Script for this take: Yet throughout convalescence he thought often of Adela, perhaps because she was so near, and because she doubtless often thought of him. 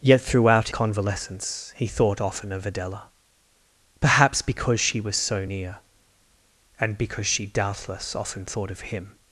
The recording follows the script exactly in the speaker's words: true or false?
true